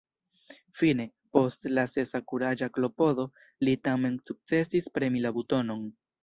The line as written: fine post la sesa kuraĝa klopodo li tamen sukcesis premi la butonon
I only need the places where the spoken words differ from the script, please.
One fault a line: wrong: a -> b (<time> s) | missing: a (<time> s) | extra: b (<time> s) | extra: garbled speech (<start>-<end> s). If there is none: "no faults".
no faults